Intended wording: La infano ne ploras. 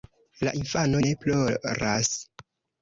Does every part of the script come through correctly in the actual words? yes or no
yes